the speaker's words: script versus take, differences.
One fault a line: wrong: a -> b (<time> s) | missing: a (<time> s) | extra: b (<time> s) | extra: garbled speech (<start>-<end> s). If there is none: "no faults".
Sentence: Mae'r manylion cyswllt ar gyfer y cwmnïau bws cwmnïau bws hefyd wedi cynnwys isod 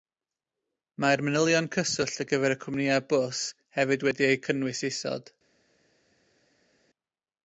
missing: cwmnïau bws (3.5 s)
extra: eu (4.3 s)